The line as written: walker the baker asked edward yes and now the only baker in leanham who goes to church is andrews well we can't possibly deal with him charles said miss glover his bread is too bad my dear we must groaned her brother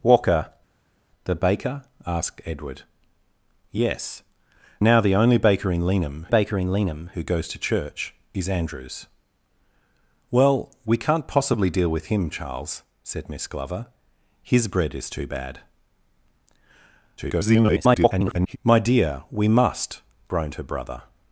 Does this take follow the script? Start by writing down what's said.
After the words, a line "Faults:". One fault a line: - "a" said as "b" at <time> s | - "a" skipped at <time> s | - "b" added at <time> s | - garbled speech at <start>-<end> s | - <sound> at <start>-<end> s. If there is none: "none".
walker the baker asked edward yes now the only baker in leanham baker in leanham who goes to church is andrews well we can't possibly deal with him charles said miss glover his bread is too bad [garbled] my dear we must groaned her brother
Faults:
- "and" skipped at 4.2 s
- "baker in leanham" added at 6.3 s
- garbled speech at 17.2-18.6 s